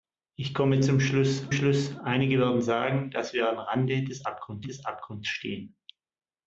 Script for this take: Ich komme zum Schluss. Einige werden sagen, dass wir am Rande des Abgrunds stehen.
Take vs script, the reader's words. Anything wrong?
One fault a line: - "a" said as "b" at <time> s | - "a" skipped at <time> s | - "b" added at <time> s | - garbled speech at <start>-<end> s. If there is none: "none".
- "Schluss" added at 1.5 s
- "des Abgrunds" added at 4.6 s